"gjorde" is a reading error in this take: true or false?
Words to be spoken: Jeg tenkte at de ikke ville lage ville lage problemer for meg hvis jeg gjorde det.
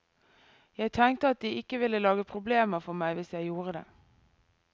false